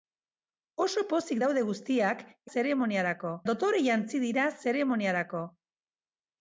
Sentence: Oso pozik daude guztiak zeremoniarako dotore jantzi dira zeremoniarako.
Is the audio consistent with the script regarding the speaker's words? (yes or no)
yes